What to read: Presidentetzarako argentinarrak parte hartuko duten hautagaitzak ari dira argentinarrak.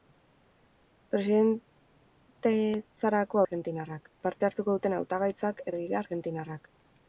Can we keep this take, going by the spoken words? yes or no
yes